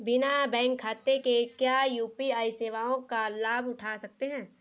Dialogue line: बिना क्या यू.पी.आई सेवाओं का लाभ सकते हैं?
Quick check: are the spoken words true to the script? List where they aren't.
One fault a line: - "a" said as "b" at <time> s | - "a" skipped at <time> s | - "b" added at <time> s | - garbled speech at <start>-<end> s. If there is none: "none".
- "बैंक खाते के" added at 0.5 s
- "उठा" added at 3.7 s